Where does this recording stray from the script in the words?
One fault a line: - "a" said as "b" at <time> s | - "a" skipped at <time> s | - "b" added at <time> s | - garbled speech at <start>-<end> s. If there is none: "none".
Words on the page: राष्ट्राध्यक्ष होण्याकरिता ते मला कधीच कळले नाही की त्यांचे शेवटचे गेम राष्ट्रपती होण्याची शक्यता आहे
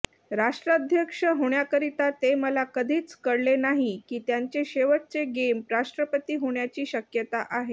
none